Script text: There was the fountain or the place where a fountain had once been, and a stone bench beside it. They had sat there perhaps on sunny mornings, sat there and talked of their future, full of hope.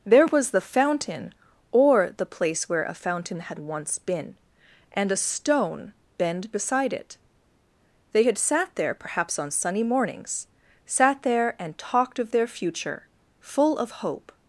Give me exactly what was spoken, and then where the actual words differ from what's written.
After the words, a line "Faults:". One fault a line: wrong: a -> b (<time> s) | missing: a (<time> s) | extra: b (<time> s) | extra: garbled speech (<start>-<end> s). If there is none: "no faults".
There was the fountain or the place where a fountain had once been, and a stone bend beside it. They had sat there perhaps on sunny mornings, sat there and talked of their future, full of hope.
Faults:
wrong: bench -> bend (6.2 s)